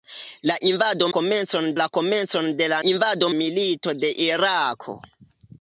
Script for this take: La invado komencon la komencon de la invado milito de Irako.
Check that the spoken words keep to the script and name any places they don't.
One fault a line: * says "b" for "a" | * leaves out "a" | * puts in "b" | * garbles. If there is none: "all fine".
all fine